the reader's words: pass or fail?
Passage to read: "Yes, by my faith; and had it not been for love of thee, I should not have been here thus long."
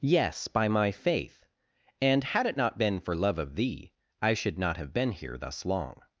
pass